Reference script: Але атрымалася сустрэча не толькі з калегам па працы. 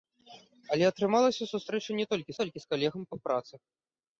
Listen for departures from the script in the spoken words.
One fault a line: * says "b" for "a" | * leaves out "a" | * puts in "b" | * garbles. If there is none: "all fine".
* puts in "толькі"